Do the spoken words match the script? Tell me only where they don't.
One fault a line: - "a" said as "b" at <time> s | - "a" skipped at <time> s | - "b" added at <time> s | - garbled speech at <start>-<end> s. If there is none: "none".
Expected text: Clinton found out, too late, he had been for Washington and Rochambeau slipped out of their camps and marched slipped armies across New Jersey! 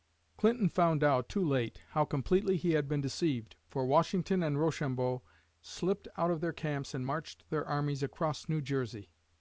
- "how completely" added at 1.9 s
- "deceived" added at 3.0 s
- "slipped" said as "their" at 7.5 s